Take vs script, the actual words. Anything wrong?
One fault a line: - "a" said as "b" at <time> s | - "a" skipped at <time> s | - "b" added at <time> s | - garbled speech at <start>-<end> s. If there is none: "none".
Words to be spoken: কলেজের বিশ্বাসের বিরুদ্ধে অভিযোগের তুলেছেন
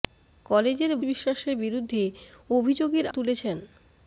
none